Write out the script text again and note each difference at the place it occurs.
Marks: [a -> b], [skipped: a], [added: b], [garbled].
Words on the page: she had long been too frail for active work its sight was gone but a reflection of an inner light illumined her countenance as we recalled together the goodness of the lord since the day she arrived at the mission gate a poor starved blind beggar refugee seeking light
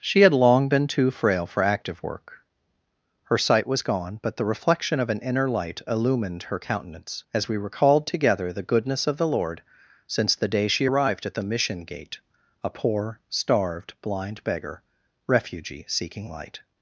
she had long been too frail for active work [its -> her] sight was gone but [a -> the] reflection of an inner light illumined her countenance as we recalled together the goodness of the lord since the day she arrived at the mission gate a poor starved blind beggar refugee seeking light